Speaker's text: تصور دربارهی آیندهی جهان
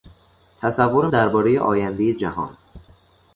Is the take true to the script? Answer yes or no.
yes